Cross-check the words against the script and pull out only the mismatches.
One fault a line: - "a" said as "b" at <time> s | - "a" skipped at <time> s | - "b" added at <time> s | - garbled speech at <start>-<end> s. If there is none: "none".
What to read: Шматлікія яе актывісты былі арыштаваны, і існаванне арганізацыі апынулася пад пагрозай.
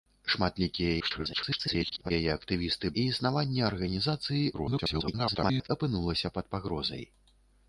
- garbled speech at 1.0-2.1 s
- "былі арыштаваны" skipped at 2.9 s
- garbled speech at 4.5-5.7 s